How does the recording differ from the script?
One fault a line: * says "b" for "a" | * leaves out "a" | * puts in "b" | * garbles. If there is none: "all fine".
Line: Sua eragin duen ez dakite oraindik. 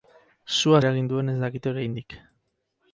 all fine